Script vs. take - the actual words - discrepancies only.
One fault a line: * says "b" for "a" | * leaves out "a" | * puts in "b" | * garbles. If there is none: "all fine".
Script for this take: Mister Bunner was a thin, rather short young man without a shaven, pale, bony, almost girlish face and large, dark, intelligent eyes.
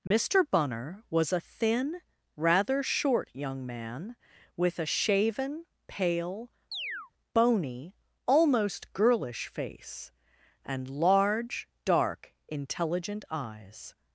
* says "with" for "without"